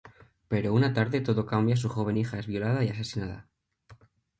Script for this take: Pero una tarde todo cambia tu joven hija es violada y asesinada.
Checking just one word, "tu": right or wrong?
wrong